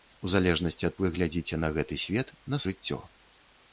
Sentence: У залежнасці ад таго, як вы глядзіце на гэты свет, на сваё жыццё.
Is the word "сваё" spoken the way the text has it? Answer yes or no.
no